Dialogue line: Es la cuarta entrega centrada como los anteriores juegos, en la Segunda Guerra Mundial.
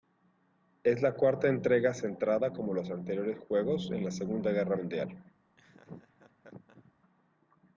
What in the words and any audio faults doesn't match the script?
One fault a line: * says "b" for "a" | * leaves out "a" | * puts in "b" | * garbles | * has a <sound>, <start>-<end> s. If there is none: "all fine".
* has a laugh, 5.6-6.9 s